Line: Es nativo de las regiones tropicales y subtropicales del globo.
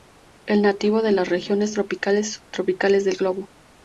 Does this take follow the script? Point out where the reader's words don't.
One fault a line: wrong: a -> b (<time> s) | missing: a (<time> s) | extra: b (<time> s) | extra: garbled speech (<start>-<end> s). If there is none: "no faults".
no faults